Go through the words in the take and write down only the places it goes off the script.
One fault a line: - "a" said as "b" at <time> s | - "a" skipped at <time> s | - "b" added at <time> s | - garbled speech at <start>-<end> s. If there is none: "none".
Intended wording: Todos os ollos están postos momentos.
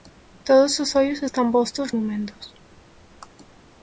none